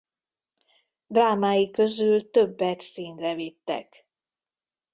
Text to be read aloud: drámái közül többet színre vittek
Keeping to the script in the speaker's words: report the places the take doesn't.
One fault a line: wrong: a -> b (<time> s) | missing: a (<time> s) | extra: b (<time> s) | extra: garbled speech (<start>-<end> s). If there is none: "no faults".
no faults